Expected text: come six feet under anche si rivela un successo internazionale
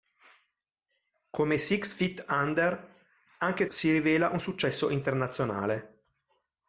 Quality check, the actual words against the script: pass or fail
pass